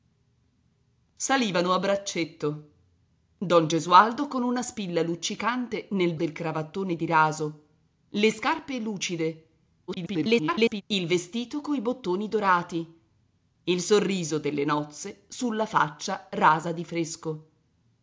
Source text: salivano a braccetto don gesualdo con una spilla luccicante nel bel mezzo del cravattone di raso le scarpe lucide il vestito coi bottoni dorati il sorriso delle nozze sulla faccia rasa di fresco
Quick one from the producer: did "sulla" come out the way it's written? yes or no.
yes